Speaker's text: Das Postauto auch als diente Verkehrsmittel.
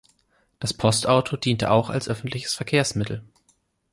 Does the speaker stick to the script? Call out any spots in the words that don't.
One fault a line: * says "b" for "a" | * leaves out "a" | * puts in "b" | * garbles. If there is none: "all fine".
* puts in "diente"
* says "öffentliches" for "diente"